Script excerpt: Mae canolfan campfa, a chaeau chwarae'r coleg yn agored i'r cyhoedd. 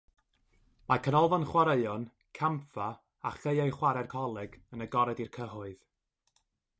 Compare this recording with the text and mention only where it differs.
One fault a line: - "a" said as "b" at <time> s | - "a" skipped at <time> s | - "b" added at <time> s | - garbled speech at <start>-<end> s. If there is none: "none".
- "chwaraeon" added at 1.5 s